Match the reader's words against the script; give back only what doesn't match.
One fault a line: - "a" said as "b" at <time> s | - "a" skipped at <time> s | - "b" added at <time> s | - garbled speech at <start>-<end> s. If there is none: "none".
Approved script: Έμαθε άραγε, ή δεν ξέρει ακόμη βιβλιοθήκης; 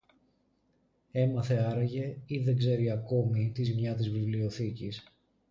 - "τη ζημιά της" added at 3.5 s